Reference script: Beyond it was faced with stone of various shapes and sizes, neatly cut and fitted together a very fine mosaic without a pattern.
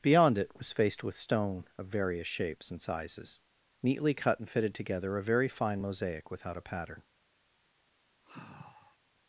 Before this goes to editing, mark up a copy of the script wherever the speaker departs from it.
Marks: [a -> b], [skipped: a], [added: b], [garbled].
Beyond it was faced with stone of various shapes and sizes, neatly cut and fitted together a very fine mosaic without a pattern.